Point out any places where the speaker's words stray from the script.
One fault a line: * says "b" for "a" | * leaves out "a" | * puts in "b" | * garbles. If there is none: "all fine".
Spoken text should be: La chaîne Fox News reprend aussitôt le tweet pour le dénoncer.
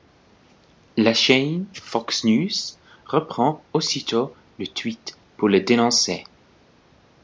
all fine